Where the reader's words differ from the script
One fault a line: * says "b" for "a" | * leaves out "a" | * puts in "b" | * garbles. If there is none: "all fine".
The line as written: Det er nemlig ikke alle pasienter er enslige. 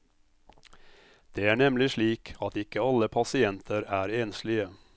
* puts in "slik at"